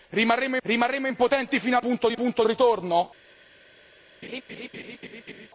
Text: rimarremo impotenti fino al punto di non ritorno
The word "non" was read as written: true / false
false